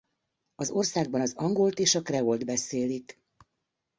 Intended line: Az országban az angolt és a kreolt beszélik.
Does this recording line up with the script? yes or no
yes